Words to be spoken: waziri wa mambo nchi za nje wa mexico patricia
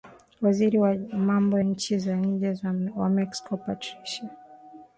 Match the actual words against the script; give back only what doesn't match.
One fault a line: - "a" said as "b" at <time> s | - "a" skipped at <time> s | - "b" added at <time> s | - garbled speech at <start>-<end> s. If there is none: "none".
none